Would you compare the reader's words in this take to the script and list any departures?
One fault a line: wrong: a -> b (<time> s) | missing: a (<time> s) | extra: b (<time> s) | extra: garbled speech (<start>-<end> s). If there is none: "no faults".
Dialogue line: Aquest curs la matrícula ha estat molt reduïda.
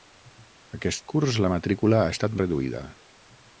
missing: molt (2.4 s)